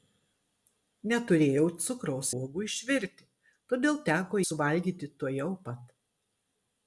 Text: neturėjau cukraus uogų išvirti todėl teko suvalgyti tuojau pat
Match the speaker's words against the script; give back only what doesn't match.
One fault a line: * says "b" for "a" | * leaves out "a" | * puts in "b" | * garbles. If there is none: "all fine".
all fine